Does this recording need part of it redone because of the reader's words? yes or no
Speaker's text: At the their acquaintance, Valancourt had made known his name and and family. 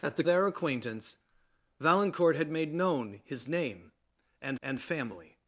no